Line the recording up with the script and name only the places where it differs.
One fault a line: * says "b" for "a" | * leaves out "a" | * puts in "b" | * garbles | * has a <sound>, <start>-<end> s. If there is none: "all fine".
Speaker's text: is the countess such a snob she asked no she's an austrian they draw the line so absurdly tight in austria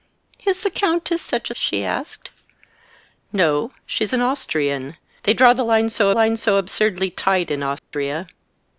* leaves out "snob"
* puts in "line so"
* has a dropout, 7.8-7.9 s